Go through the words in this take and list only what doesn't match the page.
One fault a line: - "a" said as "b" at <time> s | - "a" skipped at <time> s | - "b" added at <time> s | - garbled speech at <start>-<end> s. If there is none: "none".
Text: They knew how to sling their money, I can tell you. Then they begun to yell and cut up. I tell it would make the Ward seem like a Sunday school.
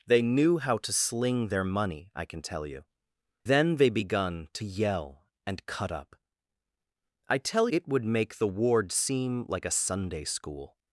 none